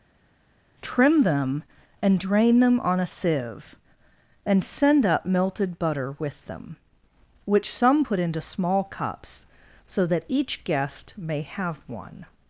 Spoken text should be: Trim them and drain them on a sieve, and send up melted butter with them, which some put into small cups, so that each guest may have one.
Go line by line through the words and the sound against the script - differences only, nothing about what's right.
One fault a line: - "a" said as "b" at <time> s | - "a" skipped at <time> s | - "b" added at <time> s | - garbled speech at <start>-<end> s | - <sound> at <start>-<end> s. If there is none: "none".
none